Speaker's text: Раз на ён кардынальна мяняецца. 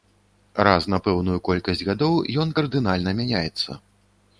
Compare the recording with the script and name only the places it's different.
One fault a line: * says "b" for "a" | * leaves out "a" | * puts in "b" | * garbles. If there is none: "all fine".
* puts in "пэўную колькасць гадоў"